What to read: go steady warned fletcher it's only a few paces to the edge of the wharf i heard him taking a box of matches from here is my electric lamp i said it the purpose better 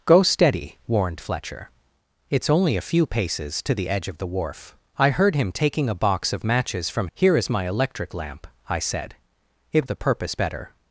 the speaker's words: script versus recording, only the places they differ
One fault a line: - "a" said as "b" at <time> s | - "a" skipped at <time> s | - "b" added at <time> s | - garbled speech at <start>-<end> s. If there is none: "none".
none